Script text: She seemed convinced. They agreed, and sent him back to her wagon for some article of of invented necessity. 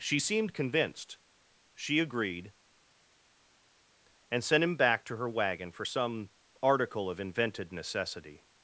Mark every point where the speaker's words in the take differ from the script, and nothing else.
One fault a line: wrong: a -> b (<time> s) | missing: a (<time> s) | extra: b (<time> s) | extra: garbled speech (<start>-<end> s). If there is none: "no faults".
wrong: They -> She (1.7 s)
missing: of (7.2 s)